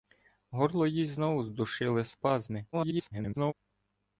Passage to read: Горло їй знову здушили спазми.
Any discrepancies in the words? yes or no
yes